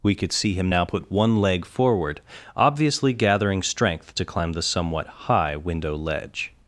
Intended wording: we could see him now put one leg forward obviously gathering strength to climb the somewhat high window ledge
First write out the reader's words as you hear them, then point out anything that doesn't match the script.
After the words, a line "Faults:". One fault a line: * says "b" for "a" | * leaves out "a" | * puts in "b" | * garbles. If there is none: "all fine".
we could see him now put one leg forward obviously gathering strength to climb the somewhat high window ledge
Faults:
all fine